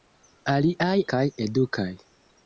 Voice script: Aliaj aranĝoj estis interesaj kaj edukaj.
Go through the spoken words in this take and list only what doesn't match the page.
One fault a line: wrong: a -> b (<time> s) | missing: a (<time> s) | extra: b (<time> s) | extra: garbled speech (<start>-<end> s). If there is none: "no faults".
missing: aranĝoj estis interesaj (0.9 s)